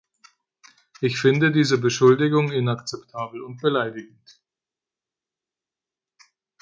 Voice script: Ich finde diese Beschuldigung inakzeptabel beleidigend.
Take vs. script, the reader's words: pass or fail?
fail